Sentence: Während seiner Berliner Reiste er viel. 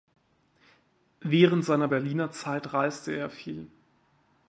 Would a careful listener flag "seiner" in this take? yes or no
no